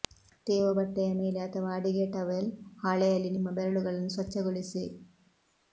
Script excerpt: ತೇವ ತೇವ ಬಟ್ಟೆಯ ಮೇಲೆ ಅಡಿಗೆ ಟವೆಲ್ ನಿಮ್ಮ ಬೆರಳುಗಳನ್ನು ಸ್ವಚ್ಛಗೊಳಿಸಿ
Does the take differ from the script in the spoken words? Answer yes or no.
yes